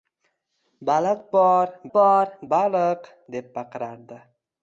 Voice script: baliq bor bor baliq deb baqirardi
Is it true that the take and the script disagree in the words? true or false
false